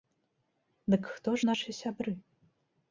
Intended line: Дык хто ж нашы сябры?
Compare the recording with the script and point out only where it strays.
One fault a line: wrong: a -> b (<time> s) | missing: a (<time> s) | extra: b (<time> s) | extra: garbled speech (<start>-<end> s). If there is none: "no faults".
no faults